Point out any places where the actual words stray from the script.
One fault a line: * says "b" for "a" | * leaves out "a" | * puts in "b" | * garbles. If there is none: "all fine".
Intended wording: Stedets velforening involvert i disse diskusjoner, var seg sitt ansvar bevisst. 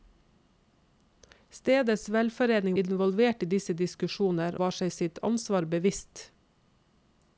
all fine